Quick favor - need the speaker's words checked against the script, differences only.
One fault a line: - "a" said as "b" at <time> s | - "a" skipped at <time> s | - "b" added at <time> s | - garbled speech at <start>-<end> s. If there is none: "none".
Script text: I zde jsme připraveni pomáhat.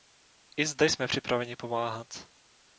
none